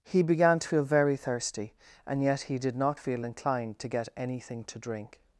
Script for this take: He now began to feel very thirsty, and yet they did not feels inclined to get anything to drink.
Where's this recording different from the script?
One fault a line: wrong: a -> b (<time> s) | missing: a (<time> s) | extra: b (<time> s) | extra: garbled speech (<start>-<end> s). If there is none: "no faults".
missing: now (0.2 s)
wrong: they -> he (2.4 s)
wrong: feels -> feel (3.0 s)